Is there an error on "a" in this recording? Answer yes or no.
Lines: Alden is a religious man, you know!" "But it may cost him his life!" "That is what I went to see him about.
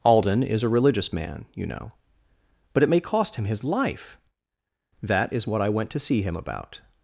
no